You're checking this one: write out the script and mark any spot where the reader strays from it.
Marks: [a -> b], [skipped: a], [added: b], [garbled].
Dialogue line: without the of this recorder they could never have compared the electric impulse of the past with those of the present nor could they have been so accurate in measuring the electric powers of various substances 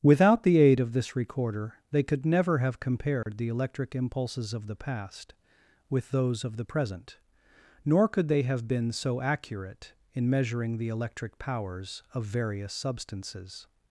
without the [added: aid] of this recorder they could never have compared the electric [impulse -> impulses] of the past with those of the present nor could they have been so accurate in measuring the electric powers of various substances